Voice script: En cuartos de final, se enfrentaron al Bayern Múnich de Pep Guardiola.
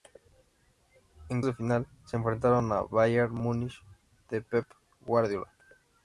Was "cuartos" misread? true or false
true